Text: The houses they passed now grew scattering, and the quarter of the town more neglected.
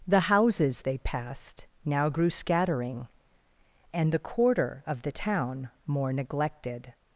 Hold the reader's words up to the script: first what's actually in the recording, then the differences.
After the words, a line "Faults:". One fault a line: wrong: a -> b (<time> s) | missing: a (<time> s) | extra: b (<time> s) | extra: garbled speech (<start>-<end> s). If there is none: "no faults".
The houses they passed now grew scattering, and the quarter of the town more neglected.
Faults:
no faults